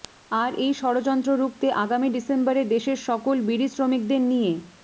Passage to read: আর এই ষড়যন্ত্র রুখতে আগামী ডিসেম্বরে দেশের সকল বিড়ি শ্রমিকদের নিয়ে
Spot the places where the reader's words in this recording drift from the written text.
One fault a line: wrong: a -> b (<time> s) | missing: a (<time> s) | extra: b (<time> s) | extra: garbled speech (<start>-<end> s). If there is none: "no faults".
no faults